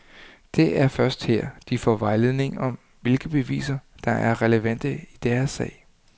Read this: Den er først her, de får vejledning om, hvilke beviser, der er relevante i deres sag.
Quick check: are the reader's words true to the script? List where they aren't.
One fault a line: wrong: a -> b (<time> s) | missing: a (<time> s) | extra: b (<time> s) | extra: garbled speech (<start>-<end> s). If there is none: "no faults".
wrong: Den -> Det (0.6 s)